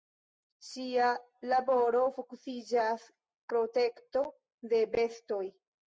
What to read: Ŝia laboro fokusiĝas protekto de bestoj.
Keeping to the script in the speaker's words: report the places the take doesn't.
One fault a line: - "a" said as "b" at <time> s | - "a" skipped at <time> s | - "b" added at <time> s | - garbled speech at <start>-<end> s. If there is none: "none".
none